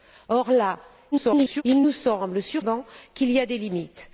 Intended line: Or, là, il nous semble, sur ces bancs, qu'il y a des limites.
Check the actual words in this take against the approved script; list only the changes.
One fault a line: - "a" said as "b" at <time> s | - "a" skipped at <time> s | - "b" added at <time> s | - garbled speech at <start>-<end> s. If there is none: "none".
- garbled speech at 1.1-1.6 s
- "ces" skipped at 2.6 s